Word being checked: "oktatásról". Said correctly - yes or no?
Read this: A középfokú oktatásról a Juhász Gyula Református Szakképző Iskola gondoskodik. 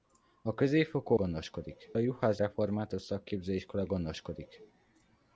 no